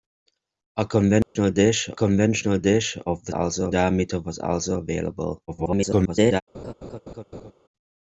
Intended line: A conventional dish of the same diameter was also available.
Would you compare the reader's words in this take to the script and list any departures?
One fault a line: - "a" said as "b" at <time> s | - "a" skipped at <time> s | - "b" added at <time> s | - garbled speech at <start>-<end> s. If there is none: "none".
- "conventional dish" added at 1.9 s
- "same" said as "also" at 3.3 s
- garbled speech at 5.5-6.4 s